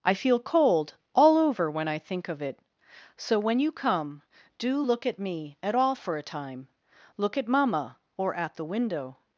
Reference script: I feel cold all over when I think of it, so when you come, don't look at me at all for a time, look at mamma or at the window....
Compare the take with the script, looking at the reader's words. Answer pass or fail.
fail